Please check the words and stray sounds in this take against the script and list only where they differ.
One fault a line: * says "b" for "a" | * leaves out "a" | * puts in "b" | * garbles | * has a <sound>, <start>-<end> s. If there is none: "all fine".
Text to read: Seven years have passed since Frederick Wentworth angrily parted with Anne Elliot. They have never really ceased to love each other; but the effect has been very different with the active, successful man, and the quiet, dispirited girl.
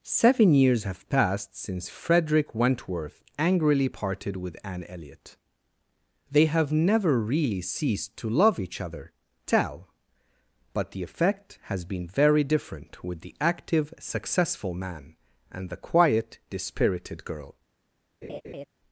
* puts in "tell"
* has a laugh, 18.2-18.7 s